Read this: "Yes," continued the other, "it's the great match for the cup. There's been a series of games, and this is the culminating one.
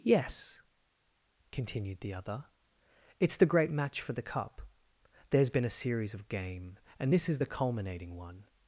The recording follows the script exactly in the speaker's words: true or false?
false